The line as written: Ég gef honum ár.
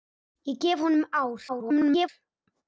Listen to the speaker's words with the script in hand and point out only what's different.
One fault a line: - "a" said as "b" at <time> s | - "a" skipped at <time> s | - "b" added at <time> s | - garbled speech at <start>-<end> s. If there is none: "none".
- garbled speech at 1.5-2.1 s